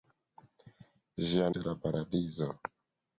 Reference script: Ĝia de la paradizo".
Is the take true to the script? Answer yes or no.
yes